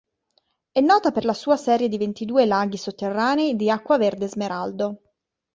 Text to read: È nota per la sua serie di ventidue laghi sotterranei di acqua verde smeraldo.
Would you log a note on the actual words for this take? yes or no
no